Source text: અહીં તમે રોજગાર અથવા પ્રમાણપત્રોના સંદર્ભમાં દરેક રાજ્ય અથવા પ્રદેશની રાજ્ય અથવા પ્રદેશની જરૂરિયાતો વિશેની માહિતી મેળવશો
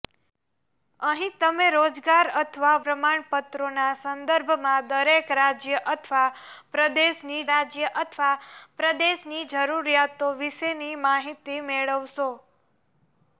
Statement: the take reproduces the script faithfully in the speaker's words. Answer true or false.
true